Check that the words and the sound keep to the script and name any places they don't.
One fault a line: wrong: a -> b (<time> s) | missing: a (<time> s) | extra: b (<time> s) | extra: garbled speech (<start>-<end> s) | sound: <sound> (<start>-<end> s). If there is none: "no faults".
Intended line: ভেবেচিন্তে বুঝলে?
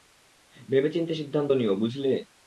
extra: সিদ্ধান্ত নিও (1.1 s)